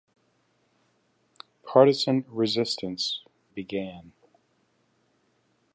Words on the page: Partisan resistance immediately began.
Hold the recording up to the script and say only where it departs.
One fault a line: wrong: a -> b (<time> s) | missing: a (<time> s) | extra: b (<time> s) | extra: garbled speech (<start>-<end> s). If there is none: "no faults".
missing: immediately (3.2 s)